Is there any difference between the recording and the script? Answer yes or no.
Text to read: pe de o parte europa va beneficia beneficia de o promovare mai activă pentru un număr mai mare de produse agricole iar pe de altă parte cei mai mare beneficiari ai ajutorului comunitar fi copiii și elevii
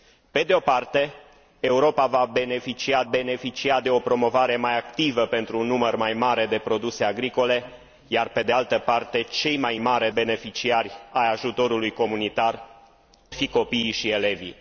no